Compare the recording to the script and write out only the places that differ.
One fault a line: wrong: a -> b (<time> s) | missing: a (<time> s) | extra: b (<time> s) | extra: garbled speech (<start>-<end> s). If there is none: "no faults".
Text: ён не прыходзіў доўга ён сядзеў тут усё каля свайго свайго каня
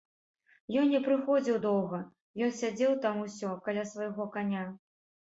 wrong: тут -> там (3.1 s)
missing: свайго (4.3 s)